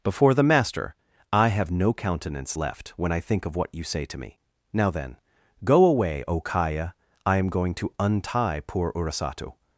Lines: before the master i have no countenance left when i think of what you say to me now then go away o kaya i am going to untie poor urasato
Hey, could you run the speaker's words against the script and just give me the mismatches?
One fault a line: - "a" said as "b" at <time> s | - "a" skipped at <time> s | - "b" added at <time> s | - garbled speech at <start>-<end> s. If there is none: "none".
none